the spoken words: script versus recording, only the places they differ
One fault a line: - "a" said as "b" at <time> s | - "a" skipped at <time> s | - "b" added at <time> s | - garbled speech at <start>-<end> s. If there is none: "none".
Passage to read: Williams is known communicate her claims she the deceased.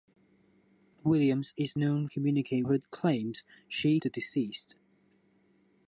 none